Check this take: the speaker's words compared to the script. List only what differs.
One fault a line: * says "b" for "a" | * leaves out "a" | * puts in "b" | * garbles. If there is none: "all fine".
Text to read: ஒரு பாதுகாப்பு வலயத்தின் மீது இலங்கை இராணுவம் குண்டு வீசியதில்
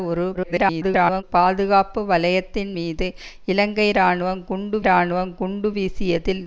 * garbles
* puts in "இராணுவம் குண்டு"